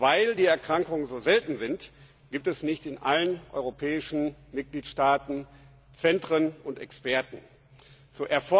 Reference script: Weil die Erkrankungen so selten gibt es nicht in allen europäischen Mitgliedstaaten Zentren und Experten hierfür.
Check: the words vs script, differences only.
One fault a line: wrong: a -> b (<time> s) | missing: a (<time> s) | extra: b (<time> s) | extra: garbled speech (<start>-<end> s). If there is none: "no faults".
extra: sind (1.6 s)